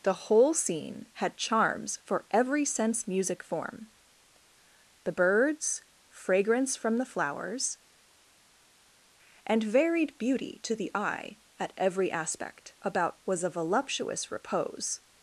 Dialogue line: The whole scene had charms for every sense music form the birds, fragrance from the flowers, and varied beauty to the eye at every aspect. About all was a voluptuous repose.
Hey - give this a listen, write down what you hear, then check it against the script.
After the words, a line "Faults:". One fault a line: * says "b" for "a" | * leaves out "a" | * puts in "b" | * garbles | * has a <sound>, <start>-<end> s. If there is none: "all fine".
The whole scene had charms for every sense music form the birds, fragrance from the flowers, and varied beauty to the eye at every aspect. About was a voluptuous repose.
Faults:
* leaves out "all"